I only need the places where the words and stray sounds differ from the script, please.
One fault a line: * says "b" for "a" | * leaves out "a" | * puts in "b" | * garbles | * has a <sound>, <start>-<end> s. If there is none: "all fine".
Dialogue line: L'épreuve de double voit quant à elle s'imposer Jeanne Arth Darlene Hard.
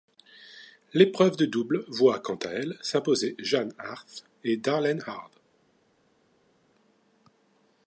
* puts in "et"